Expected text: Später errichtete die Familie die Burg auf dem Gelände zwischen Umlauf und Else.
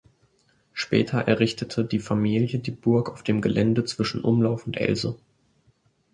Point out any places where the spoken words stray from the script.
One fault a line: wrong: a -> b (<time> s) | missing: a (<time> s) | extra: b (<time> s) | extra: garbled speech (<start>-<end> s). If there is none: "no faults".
no faults